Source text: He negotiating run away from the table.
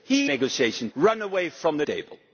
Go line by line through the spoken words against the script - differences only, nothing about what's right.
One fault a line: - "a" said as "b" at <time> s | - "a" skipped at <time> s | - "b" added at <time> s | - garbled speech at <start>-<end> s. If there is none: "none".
none